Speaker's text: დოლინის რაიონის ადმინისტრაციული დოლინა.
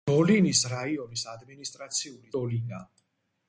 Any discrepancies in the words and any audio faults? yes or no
no